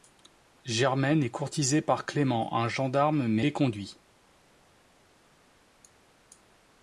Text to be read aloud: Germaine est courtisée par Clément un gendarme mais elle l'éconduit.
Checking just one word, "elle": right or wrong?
wrong